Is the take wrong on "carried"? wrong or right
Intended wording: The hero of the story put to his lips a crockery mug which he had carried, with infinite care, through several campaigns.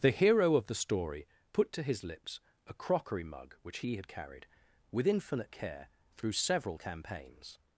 right